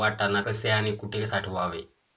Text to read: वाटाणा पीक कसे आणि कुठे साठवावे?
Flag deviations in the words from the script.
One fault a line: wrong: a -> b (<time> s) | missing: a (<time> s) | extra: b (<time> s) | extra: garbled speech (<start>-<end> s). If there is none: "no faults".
missing: पीक (0.4 s)